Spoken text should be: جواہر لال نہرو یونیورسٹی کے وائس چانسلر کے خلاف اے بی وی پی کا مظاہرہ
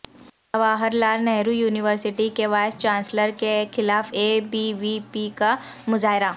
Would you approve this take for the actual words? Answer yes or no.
yes